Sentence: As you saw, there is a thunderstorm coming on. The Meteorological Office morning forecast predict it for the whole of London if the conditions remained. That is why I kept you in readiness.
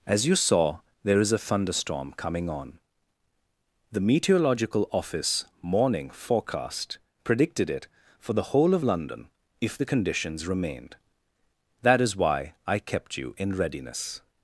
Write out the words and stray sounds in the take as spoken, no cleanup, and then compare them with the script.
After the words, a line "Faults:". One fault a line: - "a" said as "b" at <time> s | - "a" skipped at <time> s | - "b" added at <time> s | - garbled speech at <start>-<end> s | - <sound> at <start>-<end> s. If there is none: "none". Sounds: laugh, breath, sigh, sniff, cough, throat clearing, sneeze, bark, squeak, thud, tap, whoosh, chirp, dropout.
As you saw, there is a thunderstorm coming on. The Meteorological Office morning forecast predicted it for the whole of London if the conditions remained. That is why I kept you in readiness.
Faults:
- "predict" said as "predicted" at 7.2 s